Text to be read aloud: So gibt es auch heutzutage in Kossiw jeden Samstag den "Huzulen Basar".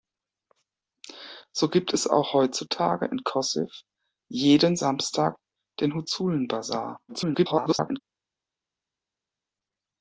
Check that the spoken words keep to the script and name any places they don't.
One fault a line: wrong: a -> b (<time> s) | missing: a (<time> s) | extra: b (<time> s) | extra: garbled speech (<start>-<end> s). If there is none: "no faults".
extra: garbled speech (7.1-8.0 s)